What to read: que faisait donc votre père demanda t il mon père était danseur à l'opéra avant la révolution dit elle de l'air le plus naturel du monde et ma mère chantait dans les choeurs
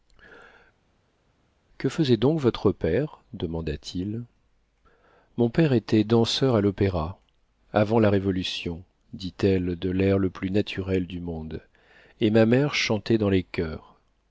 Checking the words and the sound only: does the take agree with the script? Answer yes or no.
yes